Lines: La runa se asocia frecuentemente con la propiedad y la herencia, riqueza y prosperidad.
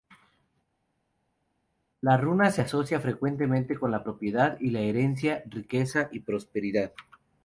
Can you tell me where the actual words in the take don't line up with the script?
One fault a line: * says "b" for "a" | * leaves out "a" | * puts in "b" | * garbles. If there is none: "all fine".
all fine